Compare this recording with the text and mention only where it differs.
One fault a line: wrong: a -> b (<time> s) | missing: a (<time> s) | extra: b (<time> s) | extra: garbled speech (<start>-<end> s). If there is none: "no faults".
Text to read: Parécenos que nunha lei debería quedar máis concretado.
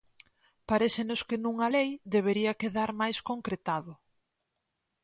no faults